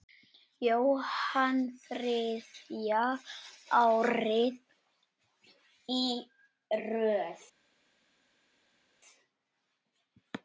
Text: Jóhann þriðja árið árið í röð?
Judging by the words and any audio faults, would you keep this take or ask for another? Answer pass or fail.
fail